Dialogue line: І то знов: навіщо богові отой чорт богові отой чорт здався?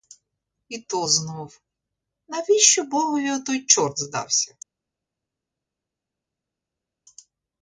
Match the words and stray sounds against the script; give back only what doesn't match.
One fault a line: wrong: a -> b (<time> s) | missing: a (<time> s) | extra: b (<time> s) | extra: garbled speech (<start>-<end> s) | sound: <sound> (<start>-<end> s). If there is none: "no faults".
missing: богові отой чорт (4.0 s)